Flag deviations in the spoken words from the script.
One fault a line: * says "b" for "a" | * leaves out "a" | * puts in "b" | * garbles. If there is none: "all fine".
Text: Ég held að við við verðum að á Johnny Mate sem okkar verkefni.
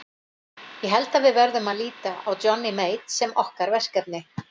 * leaves out "við"
* puts in "líta"